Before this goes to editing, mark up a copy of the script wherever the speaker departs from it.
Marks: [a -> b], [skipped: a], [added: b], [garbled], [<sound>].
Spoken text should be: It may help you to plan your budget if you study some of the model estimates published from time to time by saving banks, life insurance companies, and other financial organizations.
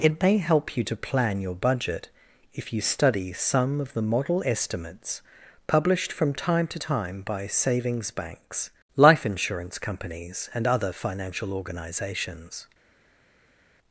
It may help you to plan your budget if you study some of the model estimates published from time to time by [saving -> savings] banks, life insurance companies, and other financial organizations.